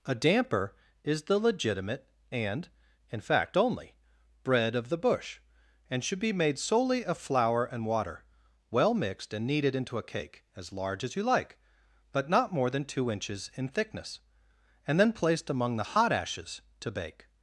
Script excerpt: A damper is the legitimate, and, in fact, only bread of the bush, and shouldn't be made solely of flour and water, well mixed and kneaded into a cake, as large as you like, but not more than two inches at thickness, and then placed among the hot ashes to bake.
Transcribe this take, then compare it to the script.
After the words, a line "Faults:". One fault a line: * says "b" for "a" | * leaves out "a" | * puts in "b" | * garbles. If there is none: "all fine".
A damper is the legitimate, and, in fact, only bread of the bush, and should be made solely of flour and water, well mixed and kneaded into a cake, as large as you like, but not more than two inches in thickness, and then placed among the hot ashes to bake.
Faults:
* says "should" for "shouldn't"
* says "in" for "at"